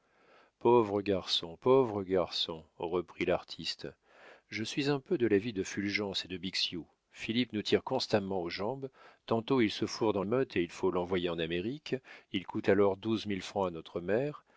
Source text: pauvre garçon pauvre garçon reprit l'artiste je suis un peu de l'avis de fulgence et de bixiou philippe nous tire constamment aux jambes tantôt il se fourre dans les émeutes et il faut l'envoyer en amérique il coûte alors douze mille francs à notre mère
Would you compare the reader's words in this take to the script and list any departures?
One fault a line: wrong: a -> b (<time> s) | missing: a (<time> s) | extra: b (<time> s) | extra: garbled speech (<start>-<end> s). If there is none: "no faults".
missing: les (10.2 s)